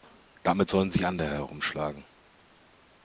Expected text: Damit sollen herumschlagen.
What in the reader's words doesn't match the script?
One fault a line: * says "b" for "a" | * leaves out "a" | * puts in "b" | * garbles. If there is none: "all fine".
* puts in "sich andere"